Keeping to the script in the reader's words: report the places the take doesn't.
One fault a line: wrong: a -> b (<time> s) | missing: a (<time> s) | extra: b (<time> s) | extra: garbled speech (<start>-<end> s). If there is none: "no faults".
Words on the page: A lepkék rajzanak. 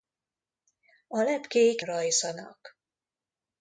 no faults